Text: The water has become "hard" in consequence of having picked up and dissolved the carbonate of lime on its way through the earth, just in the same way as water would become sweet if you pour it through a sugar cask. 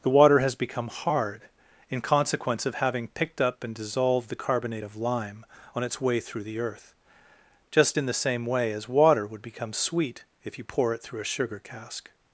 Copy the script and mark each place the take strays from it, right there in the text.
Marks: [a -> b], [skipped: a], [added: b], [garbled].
The water has become "hard" in consequence of having picked up and dissolved the carbonate of lime on its way through the earth, just in the same way as water would become sweet if you pour it through a sugar cask.